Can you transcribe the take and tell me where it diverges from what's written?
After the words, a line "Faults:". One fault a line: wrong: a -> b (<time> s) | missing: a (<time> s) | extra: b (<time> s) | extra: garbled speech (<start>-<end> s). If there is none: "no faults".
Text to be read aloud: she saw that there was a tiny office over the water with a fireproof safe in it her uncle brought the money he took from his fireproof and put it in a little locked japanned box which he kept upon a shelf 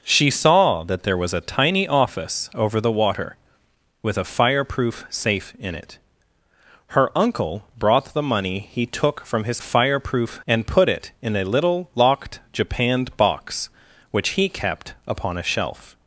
she saw that there was a tiny office over the water with a fireproof safe in it her uncle brought the money he took from his fireproof and put it in a little locked japanned box which he kept upon a shelf
Faults:
no faults